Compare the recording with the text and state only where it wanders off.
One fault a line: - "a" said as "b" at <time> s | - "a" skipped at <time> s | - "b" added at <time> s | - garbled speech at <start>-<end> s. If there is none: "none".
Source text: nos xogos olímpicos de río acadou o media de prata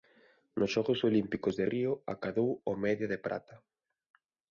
none